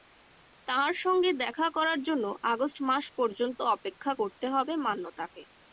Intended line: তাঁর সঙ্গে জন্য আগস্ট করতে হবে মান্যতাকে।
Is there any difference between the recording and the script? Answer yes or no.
yes